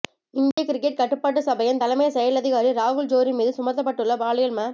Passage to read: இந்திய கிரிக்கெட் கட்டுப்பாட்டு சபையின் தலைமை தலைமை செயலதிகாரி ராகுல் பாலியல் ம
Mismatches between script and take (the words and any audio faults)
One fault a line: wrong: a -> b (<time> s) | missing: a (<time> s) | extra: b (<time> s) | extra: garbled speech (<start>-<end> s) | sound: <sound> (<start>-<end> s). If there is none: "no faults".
sound: dropout (0.5-0.6 s)
missing: தலைமை (2.1 s)
extra: ஜோரி மீது சுமத்தப்பட்டுள்ள (3.1 s)